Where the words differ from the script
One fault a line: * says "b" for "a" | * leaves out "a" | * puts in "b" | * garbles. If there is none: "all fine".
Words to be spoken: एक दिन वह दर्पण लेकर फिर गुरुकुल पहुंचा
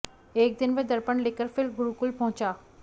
all fine